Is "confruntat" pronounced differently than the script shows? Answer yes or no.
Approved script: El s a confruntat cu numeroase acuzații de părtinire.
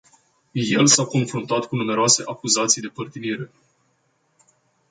no